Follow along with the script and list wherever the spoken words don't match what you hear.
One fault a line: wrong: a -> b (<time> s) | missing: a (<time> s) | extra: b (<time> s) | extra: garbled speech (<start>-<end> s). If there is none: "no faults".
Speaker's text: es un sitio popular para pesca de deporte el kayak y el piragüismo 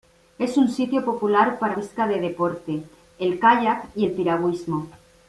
no faults